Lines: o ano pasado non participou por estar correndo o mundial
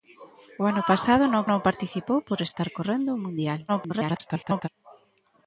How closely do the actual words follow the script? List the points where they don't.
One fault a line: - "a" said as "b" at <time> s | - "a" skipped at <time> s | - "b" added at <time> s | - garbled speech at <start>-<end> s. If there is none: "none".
- "non" added at 1.5 s
- garbled speech at 3.7-4.7 s